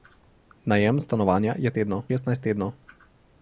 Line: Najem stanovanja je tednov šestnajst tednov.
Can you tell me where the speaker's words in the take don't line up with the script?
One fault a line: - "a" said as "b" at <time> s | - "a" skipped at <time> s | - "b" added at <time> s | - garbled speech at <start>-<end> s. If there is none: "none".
none